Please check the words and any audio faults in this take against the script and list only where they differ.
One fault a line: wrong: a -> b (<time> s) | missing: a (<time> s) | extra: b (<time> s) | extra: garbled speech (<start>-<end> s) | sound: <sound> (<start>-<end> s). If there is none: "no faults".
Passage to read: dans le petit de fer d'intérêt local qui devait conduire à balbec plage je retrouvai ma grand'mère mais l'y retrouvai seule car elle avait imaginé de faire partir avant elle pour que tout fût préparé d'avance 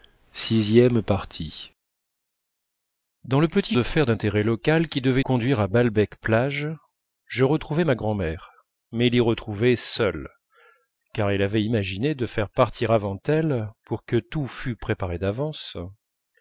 no faults